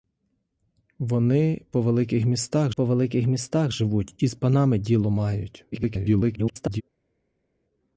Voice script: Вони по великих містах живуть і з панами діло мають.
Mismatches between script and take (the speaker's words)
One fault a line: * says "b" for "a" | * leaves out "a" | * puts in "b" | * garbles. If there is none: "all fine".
* puts in "по великих містах"
* garbles